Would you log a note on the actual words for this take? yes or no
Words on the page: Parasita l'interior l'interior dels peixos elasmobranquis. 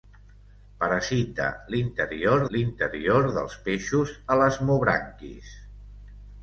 no